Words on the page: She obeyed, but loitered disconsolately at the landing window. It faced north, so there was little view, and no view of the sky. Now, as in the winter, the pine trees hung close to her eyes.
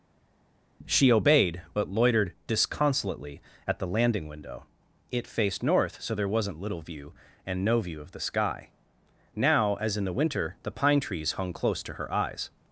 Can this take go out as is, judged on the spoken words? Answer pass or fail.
fail